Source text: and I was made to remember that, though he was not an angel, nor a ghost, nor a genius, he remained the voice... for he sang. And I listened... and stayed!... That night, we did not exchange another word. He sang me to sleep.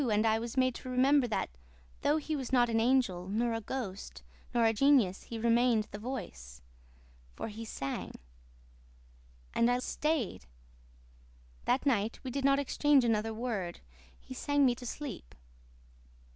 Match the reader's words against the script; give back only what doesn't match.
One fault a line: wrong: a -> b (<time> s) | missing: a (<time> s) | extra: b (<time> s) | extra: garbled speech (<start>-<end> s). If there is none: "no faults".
missing: listened and (9.8 s)